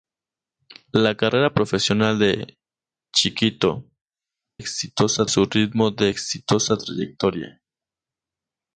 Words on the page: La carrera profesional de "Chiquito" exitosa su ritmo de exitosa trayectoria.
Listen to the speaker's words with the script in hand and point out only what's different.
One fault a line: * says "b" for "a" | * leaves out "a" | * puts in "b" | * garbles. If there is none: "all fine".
all fine